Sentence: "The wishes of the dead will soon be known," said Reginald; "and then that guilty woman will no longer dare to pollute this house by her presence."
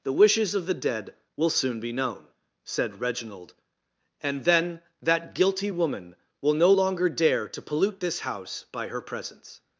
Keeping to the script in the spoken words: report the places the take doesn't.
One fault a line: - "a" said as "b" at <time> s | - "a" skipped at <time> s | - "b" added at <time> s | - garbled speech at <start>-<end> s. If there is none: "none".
none